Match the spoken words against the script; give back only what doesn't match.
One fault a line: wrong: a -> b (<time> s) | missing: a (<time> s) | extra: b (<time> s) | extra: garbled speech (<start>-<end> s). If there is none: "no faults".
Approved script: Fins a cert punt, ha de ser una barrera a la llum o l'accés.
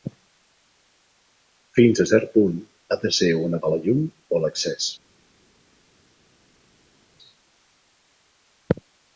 missing: barrera (3.6 s)